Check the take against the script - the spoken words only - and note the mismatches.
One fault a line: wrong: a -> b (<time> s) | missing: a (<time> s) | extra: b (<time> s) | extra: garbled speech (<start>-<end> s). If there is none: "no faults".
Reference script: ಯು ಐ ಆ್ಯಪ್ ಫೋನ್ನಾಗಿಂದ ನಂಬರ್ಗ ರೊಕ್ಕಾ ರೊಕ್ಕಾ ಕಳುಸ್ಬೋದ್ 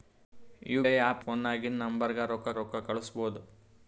no faults